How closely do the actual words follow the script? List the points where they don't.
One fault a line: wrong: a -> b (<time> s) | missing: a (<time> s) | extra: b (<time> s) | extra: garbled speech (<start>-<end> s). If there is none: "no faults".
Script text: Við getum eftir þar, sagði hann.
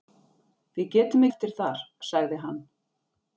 no faults